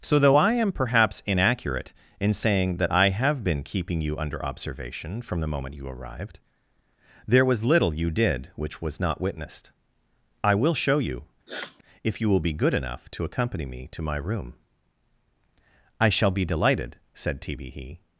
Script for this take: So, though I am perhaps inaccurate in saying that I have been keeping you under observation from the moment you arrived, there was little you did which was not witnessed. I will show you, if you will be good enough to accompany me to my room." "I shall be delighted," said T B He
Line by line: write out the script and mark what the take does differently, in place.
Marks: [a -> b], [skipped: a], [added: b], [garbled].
So, though I am perhaps inaccurate in saying that I have been keeping you under observation from the moment you arrived, there was little you did which was not witnessed. I will show you, if you will be good enough to accompany me to my room." "I shall be delighted," said T B He